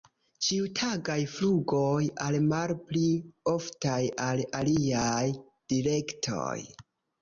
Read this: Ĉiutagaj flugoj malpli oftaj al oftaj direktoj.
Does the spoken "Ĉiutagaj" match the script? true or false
true